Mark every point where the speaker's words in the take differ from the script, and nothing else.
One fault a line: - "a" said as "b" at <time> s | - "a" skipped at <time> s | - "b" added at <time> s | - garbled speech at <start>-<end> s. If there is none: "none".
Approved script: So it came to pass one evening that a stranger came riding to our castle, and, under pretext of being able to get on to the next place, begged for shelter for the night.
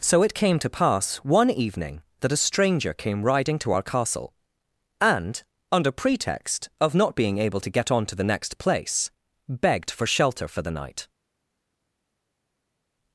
- "not" added at 6.9 s